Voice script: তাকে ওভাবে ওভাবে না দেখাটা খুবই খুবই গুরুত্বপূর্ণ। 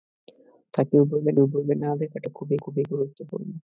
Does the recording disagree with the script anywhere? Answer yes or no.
no